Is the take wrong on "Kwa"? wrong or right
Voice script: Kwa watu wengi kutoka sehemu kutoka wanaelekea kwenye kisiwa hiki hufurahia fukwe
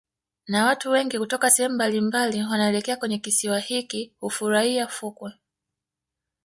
wrong